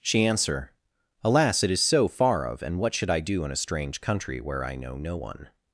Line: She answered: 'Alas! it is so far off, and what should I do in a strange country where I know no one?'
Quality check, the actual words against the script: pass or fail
fail